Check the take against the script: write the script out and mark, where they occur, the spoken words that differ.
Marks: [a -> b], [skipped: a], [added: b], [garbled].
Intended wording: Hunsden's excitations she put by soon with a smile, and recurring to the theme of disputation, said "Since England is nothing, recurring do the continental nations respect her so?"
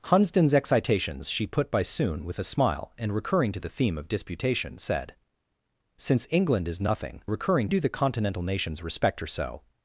Hunsden's excitations she put by soon with a smile, and recurring to the theme of disputation, said "Since England is nothing, recurring do the continental nations respect her so?"